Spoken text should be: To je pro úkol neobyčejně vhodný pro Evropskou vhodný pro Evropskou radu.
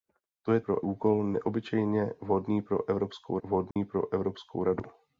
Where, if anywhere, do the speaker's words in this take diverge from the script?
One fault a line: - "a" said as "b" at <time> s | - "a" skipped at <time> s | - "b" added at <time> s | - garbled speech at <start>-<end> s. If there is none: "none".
none